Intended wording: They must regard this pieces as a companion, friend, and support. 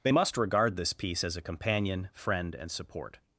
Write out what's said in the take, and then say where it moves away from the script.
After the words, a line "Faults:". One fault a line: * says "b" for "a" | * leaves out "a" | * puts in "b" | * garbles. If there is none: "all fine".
They must regard this piece as a companion, friend, and support.
Faults:
* says "piece" for "pieces"